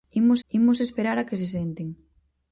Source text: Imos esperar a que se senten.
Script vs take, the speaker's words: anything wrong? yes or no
yes